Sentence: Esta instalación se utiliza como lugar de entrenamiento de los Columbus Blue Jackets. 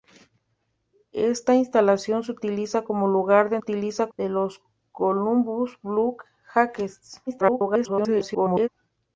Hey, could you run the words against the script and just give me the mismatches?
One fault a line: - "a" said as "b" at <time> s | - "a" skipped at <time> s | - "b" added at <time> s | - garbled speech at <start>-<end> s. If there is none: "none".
- "entrenamiento" said as "utiliza" at 3.6 s
- garbled speech at 7.3-8.7 s